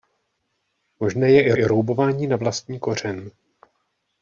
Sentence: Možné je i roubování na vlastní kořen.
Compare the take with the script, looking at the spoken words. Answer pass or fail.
fail